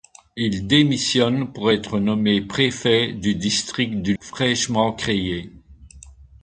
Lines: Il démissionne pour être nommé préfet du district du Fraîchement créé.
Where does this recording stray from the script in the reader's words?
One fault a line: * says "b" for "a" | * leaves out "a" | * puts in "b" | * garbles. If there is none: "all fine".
all fine